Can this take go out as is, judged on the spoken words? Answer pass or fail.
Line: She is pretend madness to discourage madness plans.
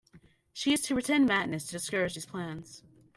fail